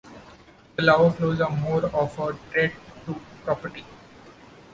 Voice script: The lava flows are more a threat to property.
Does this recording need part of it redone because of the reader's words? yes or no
yes